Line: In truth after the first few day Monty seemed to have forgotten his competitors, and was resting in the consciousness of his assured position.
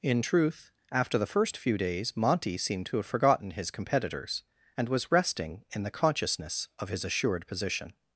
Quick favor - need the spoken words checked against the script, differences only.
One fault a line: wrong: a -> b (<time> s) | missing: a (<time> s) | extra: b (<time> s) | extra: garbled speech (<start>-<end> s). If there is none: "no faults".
wrong: day -> days (1.8 s)